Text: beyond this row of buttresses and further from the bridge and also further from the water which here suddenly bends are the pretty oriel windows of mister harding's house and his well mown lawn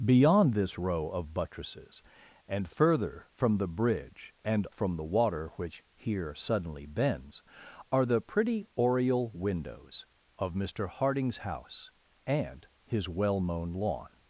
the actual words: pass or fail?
fail